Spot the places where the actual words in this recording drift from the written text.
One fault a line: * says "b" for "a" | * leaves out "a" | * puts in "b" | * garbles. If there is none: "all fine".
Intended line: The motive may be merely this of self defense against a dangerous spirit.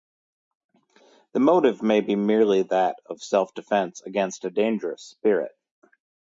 * says "that" for "this"